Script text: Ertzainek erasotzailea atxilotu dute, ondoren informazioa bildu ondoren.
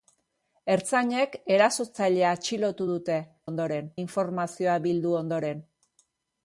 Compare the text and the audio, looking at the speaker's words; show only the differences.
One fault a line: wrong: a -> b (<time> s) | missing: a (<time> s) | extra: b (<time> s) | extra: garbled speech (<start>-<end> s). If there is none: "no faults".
no faults